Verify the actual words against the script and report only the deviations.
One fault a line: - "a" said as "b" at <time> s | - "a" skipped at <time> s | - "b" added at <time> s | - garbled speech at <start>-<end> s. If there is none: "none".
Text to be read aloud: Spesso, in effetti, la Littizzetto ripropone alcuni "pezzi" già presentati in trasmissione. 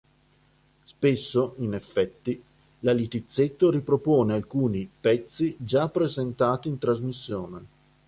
none